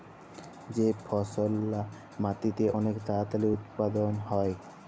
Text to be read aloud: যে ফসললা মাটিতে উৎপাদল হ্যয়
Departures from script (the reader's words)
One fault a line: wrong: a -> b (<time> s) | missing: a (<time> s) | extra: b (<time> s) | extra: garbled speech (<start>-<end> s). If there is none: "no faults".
extra: অলেক তাড়াতাড়ি (2.8 s)